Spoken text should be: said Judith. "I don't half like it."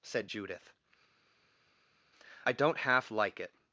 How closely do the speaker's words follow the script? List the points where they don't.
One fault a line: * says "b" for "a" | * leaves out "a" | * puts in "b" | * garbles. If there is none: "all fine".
all fine